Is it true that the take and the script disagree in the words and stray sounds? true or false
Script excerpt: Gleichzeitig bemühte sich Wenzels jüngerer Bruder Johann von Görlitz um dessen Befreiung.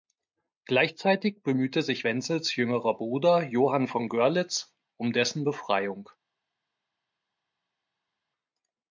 false